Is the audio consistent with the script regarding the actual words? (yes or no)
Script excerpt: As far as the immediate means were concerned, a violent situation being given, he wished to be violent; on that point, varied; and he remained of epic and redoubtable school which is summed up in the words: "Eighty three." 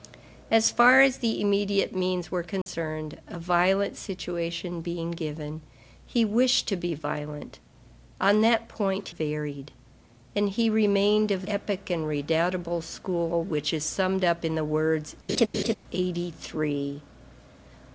yes